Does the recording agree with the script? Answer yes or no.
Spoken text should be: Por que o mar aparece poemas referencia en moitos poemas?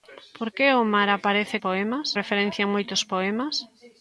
yes